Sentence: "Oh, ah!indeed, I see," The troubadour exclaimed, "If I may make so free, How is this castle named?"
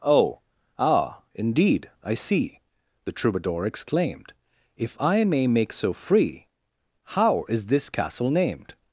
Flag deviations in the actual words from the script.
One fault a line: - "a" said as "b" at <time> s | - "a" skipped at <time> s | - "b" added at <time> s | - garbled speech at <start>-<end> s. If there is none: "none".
none